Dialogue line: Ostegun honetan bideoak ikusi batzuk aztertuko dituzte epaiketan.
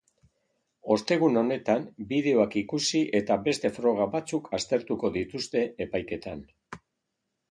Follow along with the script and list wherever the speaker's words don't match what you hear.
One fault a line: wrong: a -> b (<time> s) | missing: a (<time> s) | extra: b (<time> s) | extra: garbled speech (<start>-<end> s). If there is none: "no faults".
extra: eta beste froga (3.2 s)